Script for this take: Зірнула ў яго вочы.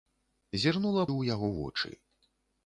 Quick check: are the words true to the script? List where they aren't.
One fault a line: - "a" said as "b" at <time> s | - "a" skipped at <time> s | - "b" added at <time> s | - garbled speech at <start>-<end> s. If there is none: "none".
none